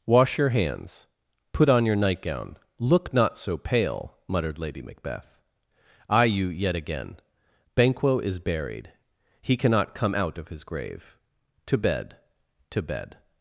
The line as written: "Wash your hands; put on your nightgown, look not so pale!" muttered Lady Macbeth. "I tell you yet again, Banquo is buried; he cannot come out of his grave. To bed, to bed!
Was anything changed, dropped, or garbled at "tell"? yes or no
yes